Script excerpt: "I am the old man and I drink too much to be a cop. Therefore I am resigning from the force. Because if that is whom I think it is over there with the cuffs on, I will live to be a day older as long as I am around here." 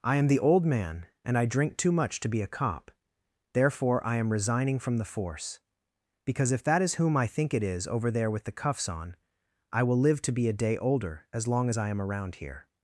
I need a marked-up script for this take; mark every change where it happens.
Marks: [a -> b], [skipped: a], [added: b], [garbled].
"I am the old man and I drink too much to be a cop. Therefore I am resigning from the force. Because if that is whom I think it is over there with the cuffs on, I will live to be a day older as long as I am around here."